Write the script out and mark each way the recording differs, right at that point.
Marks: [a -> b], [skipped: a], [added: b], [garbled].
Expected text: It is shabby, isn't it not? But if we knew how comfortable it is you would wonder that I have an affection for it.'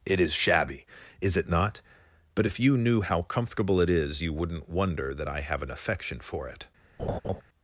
It is shabby, [isn't -> is] it not? But if [we -> you] knew how comfortable it is you [would -> wouldn't] wonder that I have an affection for it.'